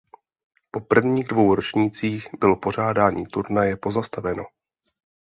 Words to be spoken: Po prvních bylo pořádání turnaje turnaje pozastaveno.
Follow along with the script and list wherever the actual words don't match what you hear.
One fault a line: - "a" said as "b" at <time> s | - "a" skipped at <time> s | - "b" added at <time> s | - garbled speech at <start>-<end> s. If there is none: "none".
- "dvou ročnících" added at 1.3 s
- "turnaje" skipped at 3.8 s